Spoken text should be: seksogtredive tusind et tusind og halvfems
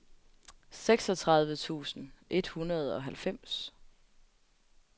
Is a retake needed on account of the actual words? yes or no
yes